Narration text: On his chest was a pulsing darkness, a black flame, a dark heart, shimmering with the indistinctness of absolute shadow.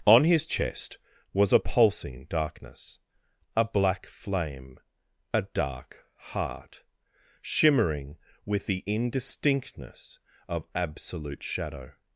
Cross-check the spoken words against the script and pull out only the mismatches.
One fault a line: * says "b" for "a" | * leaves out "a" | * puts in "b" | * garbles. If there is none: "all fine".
all fine